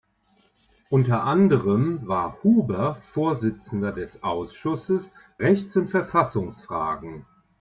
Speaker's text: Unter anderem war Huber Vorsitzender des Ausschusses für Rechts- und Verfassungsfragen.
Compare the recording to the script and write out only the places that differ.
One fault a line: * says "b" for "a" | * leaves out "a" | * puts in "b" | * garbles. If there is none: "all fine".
* leaves out "für"